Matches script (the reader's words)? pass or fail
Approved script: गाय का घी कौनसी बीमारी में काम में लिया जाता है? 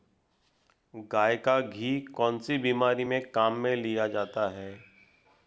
pass